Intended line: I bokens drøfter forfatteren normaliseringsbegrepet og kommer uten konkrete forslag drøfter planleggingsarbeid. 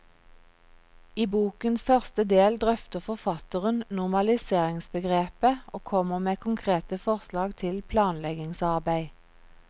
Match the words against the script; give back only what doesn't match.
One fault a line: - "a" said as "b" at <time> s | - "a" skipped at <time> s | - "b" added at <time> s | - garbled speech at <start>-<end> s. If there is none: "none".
- "første del" added at 1.9 s
- "uten" said as "med" at 6.3 s
- "drøfter" said as "til" at 7.6 s